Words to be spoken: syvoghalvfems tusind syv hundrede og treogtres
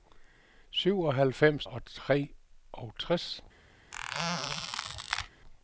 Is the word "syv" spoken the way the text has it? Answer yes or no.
no